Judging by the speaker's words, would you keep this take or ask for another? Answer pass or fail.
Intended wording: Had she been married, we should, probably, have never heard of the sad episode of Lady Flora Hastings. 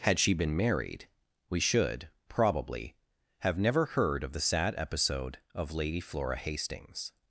pass